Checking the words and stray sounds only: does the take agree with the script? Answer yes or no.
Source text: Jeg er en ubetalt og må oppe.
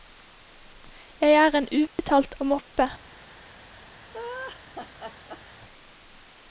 no